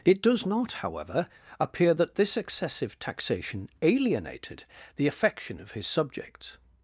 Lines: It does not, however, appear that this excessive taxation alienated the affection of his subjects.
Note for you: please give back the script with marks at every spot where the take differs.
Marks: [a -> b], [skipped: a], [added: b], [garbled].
It does not, however, appear that this excessive taxation alienated the affection of his subjects.